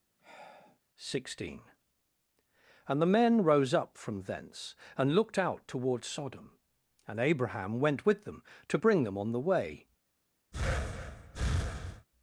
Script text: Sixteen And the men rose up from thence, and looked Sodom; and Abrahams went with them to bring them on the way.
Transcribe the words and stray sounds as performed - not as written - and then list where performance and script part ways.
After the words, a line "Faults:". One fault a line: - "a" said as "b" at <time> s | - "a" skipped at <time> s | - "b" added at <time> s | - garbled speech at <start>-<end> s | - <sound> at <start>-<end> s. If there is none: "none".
Sixteen And the men rose up from thence, and looked out toward Sodom; and Abraham went with them to bring them on the way.
Faults:
- sigh at 0.2-0.8 s
- "out toward" added at 5.4 s
- "Abrahams" said as "Abraham" at 7.2 s
- breath at 10.5-12.1 s